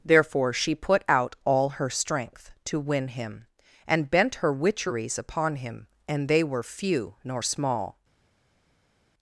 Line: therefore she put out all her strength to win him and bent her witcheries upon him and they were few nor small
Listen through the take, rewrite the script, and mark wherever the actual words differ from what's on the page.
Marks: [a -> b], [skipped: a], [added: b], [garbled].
therefore she put out all her strength to win him and bent her witcheries upon him and they were few nor small